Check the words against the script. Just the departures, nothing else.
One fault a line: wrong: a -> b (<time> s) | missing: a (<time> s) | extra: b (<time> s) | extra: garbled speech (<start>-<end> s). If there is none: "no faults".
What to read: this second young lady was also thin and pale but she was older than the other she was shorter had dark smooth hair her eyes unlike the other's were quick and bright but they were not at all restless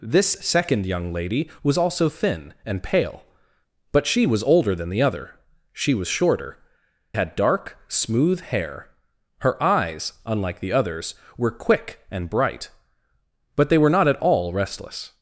no faults